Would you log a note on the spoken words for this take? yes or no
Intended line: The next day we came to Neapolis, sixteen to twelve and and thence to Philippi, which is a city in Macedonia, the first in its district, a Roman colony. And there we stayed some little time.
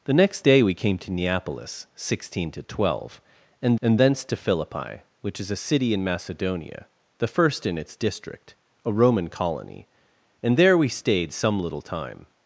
no